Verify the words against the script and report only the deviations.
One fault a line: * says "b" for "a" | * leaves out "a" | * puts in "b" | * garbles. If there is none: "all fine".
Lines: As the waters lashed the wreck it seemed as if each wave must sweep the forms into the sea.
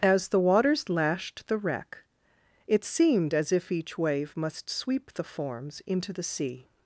all fine